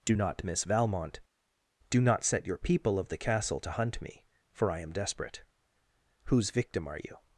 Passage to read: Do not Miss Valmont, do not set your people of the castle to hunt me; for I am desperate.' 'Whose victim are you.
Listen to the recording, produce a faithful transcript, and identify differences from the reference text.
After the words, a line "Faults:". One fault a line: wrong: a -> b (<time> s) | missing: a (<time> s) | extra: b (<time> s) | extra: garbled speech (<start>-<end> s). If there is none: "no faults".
Do not Miss Valmont, do not set your people of the castle to hunt me; for I am desperate.' 'Whose victim are you.
Faults:
no faults